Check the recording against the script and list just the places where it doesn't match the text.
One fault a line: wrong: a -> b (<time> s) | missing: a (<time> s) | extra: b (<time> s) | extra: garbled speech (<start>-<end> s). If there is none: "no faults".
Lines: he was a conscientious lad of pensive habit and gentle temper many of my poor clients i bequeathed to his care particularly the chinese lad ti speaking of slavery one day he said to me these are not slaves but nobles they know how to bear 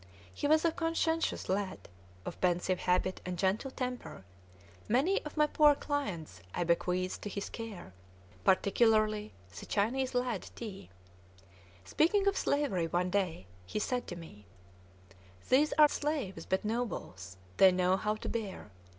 missing: not (15.9 s)